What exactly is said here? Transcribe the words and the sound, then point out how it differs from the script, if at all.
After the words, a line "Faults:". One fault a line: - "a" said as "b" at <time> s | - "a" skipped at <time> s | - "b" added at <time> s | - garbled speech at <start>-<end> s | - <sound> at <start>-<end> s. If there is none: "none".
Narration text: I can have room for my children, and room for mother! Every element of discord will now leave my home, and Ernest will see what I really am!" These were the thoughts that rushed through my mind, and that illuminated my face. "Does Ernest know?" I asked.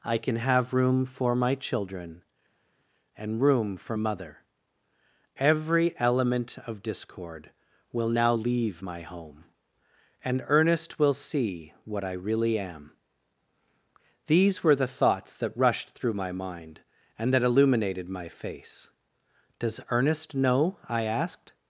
I can have room for my children, and room for mother! Every element of discord will now leave my home, and Ernest will see what I really am!" These were the thoughts that rushed through my mind, and that illuminated my face. "Does Ernest know?" I asked.
Faults:
none